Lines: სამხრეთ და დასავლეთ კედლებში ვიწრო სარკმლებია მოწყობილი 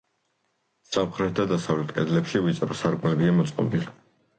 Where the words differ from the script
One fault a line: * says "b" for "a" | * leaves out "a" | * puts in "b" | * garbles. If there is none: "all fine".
all fine